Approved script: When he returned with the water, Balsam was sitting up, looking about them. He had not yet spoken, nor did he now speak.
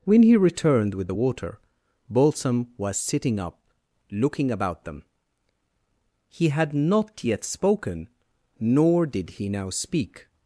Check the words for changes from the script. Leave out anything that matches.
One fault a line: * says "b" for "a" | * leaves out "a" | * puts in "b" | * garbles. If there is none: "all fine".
all fine